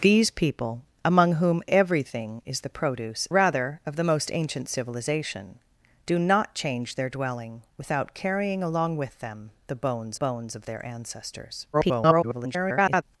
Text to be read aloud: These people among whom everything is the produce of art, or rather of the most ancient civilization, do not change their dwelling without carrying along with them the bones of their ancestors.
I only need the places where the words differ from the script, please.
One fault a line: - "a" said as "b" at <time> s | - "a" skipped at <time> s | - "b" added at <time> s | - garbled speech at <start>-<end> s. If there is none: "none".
- "of art or" skipped at 3.3 s
- "bones" added at 10.1 s
- garbled speech at 11.7-13.0 s